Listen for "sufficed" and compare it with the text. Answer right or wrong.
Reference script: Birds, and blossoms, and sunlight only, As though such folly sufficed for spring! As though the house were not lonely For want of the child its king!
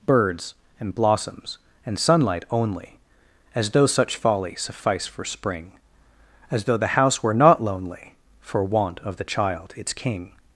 wrong